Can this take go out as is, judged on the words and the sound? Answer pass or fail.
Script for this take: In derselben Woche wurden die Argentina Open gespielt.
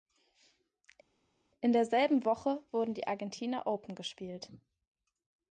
pass